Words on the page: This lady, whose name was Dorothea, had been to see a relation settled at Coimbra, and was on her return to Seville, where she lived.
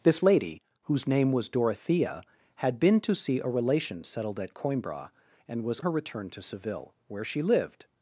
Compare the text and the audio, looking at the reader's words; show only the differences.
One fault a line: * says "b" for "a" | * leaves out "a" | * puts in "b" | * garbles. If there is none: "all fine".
* leaves out "on"